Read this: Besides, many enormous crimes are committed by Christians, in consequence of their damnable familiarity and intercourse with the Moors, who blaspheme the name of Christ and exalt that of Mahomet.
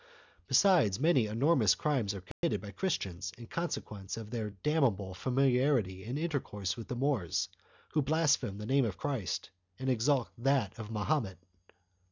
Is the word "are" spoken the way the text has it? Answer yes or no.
yes